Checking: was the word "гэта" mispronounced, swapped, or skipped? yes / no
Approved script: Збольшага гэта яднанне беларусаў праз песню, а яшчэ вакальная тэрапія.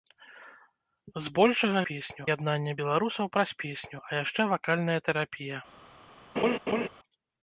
yes